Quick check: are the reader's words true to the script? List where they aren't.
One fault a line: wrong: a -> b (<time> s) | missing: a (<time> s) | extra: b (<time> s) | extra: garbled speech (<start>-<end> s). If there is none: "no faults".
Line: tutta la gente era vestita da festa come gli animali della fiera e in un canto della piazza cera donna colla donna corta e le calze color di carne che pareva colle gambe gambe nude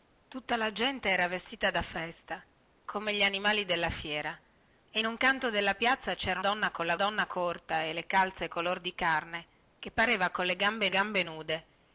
no faults